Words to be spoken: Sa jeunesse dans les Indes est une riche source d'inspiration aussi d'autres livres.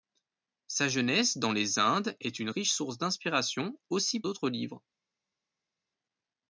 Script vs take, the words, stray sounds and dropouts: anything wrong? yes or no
no